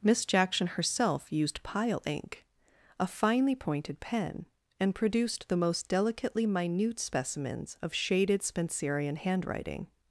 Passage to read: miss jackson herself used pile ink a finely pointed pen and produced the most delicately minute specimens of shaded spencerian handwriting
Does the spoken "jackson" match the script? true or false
true